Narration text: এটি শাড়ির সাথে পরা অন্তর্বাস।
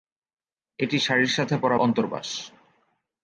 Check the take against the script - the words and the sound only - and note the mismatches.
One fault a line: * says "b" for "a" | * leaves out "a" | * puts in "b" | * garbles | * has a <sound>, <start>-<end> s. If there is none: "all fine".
all fine